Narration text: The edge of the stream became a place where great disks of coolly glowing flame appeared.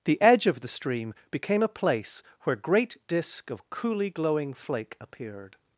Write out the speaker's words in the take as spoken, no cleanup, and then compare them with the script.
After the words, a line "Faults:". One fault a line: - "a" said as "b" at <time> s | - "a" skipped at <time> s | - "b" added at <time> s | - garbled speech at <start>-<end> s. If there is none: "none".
The edge of the stream became a place where great disk of coolly glowing flake appeared.
Faults:
- "disks" said as "disk" at 3.1 s
- "flame" said as "flake" at 4.5 s